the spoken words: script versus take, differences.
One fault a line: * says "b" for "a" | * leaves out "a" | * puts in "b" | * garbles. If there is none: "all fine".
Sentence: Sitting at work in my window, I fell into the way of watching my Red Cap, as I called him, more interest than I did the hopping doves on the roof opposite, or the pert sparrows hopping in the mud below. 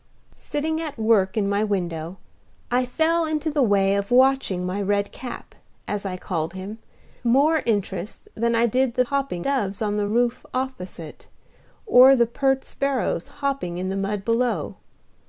all fine